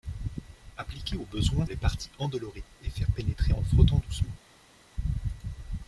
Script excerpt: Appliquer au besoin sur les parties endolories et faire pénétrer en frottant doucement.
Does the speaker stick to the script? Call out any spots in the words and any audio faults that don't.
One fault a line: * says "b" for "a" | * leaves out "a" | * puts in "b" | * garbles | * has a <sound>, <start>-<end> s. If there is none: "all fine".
* leaves out "sur"